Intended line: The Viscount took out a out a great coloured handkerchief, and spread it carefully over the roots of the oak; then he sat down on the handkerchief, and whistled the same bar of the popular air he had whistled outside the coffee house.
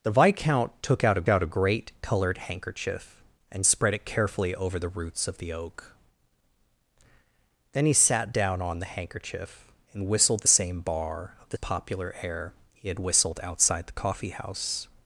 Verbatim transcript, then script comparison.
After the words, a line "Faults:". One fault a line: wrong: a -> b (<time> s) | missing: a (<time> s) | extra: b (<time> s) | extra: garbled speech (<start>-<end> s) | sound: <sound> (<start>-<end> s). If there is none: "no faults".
The Viscount took out a out a great coloured handkerchief, and spread it carefully over the roots of the oak; then he sat down on the handkerchief, and whistled the same bar of the popular air he had whistled outside the coffee house.
Faults:
no faults